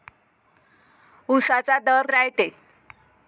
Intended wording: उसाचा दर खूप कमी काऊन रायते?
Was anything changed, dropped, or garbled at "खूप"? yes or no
yes